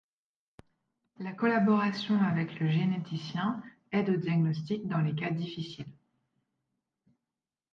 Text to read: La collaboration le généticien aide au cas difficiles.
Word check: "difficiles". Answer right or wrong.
right